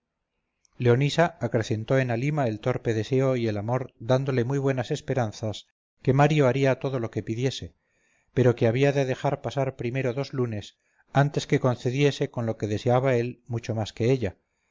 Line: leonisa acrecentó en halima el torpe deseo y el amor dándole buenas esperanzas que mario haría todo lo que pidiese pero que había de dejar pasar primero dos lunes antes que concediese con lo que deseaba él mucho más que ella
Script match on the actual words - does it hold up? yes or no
no